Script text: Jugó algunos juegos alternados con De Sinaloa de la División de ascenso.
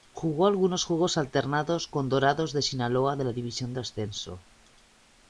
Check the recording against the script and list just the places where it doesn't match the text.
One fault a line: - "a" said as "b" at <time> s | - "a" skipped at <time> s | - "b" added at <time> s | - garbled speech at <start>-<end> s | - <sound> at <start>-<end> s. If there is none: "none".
- "Dorados" added at 2.1 s